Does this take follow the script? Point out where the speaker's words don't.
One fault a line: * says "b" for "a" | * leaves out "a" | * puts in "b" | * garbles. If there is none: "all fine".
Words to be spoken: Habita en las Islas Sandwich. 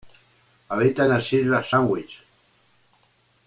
all fine